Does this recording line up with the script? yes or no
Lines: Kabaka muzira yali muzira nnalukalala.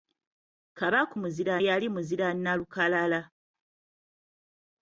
yes